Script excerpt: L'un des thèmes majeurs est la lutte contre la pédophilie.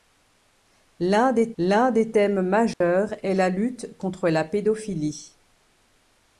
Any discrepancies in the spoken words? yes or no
yes